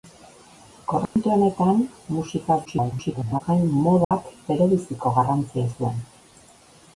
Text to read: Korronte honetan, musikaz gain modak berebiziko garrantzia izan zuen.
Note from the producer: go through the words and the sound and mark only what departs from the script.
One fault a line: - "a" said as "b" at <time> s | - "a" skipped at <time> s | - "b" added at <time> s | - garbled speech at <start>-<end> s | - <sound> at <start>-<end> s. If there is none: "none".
- dropout at 1.1-1.2 s
- garbled speech at 2.7-3.4 s
- dropout at 4.0-4.1 s
- "izan" skipped at 5.7 s